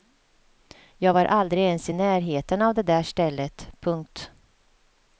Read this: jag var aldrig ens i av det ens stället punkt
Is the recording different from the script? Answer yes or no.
yes